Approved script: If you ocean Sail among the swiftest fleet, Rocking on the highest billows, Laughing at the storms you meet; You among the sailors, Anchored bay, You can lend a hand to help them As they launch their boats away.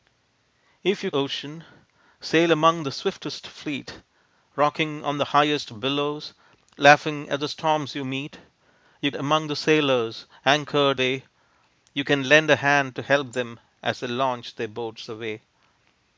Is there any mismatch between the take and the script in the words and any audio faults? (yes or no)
no